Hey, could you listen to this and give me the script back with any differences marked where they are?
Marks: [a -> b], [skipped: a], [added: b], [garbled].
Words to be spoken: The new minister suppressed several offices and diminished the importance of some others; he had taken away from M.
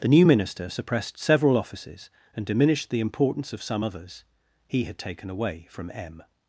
The new minister suppressed several offices and diminished the importance of some others; he had taken away from M.